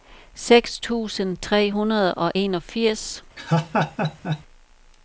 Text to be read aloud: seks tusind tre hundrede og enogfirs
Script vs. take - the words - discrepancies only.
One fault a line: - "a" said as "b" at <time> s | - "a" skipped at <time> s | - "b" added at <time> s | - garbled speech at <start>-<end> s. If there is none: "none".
none